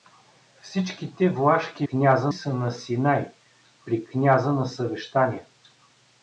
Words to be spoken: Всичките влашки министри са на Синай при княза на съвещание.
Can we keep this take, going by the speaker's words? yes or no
no